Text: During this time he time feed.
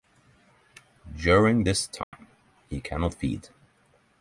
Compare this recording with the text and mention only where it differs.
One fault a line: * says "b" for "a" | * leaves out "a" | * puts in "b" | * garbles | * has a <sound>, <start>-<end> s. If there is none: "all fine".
* has a dropout, 2.0-2.1 s
* says "cannot" for "time"